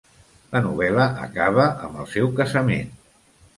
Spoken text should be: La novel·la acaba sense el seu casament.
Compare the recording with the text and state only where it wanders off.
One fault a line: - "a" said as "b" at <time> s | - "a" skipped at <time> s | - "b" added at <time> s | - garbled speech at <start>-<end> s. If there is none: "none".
- "sense" said as "amb" at 1.9 s